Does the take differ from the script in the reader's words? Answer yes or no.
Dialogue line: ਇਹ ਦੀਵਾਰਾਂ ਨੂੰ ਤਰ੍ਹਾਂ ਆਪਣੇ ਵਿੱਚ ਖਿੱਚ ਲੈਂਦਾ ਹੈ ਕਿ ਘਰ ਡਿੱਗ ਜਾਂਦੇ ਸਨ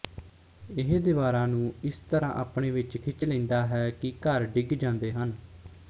yes